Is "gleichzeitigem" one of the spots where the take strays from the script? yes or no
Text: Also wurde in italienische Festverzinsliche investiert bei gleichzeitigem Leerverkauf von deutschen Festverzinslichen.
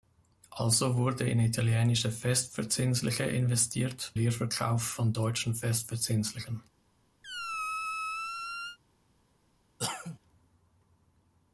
yes